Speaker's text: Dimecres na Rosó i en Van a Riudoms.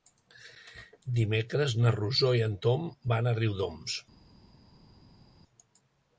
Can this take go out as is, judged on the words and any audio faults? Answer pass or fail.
fail